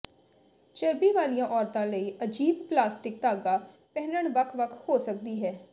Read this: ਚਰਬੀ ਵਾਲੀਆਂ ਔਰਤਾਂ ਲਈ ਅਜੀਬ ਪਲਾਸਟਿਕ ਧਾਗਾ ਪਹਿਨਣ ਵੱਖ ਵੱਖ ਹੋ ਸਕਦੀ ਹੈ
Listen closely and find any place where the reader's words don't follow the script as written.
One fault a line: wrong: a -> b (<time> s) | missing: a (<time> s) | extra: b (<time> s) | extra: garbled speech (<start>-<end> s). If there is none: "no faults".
no faults